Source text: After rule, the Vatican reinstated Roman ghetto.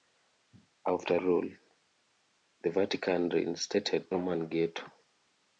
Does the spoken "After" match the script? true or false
true